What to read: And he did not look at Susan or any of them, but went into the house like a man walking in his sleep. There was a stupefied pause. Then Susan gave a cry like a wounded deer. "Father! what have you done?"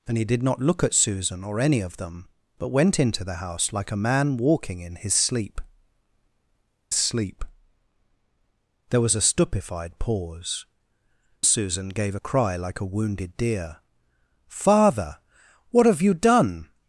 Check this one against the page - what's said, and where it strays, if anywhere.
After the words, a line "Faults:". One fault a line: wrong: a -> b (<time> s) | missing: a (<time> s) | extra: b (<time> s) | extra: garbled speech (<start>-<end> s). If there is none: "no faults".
And he did not look at Susan or any of them, but went into the house like a man walking in his sleep sleep. There was a stupefied pause. Susan gave a cry like a wounded deer. "Father! what have you done?"
Faults:
extra: sleep (6.9 s)
missing: Then (10.7 s)